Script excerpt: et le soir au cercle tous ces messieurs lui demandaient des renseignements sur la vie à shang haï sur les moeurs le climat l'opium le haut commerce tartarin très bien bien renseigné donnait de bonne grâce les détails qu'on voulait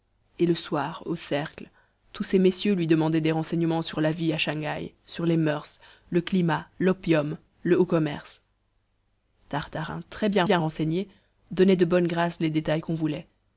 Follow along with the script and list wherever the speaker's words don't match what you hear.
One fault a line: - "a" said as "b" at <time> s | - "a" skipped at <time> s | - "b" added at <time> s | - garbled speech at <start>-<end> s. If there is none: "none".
none